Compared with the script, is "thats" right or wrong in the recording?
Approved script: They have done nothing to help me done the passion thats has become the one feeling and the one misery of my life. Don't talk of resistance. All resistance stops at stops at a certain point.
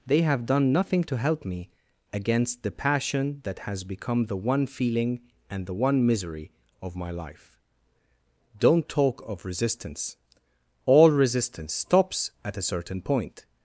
wrong